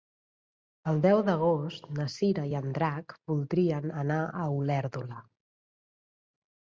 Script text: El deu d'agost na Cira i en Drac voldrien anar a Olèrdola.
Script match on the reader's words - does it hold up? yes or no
yes